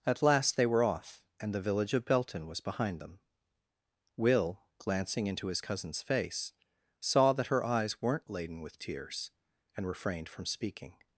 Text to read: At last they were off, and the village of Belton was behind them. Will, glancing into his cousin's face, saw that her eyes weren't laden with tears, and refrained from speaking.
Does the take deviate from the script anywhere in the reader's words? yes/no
no